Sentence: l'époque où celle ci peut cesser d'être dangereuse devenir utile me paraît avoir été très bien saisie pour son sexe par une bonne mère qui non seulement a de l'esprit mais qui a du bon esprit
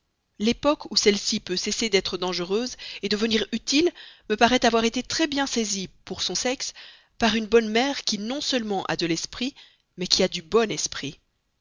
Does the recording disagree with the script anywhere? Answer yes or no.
no